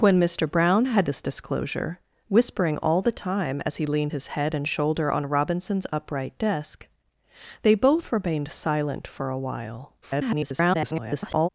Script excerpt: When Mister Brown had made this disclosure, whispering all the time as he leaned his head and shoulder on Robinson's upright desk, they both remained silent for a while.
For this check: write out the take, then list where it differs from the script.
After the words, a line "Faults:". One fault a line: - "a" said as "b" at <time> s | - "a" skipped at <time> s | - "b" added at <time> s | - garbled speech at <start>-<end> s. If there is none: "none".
When Mister Brown had this disclosure, whispering all the time as he leaned his head and shoulder on Robinson's upright desk, they both remained silent for a while. [garbled]
Faults:
- "made" skipped at 1.1 s
- garbled speech at 10.0-11.5 s